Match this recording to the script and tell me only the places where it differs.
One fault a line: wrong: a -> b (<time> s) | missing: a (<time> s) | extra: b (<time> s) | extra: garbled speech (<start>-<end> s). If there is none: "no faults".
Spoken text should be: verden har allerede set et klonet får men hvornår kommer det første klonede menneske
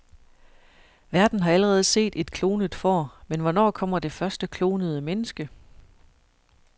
no faults